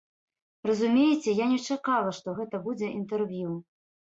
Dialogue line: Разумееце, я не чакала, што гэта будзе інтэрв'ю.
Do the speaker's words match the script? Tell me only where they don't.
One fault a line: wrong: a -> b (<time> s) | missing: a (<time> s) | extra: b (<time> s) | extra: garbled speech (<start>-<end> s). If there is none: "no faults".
no faults